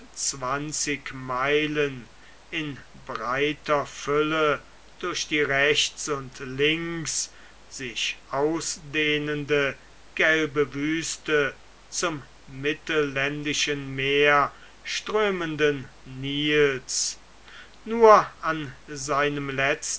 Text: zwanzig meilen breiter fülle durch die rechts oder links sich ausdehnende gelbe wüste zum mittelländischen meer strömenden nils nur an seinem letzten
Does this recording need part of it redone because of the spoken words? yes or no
yes